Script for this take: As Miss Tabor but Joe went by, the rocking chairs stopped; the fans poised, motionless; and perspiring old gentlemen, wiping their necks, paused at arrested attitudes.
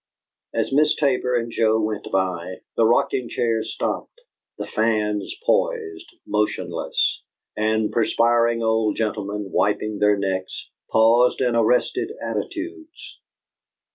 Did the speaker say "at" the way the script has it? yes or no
no